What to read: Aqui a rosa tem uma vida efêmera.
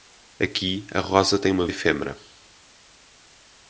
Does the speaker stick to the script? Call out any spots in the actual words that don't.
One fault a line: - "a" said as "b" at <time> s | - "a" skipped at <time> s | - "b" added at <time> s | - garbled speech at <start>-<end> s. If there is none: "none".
- "vida" skipped at 1.7 s